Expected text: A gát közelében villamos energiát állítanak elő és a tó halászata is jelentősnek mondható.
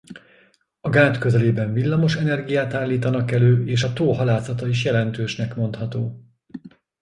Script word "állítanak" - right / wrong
right